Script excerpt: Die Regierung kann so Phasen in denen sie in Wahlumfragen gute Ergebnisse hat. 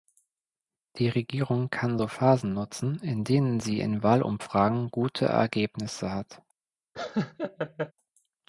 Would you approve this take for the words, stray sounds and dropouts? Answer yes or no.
no